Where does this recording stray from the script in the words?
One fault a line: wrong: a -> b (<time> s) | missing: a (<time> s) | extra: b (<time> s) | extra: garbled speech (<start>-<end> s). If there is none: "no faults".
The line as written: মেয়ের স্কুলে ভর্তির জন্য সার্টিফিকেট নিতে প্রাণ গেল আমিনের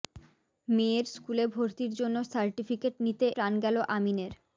no faults